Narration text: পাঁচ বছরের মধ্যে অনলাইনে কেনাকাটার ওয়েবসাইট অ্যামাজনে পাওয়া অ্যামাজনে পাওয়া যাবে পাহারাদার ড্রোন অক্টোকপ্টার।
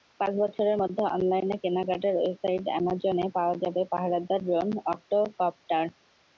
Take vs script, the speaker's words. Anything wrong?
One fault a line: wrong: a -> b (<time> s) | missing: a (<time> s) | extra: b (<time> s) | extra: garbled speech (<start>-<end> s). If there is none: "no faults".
missing: অ্যামাজনে পাওয়া (3.5 s)